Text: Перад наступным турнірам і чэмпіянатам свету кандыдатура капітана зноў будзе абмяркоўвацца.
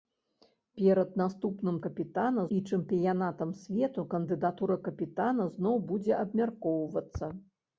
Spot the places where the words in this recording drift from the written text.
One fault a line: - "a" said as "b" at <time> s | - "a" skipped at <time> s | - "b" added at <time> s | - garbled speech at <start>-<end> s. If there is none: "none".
- "турнірам" said as "капітана" at 1.9 s